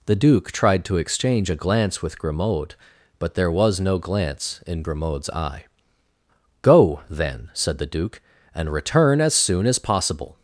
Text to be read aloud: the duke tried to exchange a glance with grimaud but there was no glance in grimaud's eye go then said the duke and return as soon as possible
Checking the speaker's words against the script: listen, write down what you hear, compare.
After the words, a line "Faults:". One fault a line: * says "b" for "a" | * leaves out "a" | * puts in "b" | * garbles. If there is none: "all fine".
the duke tried to exchange a glance with grimaud but there was no glance in grimaud's eye go then said the duke and return as soon as possible
Faults:
all fine